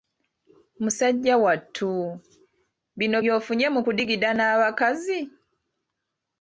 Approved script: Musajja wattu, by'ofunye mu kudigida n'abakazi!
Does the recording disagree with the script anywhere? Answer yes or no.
yes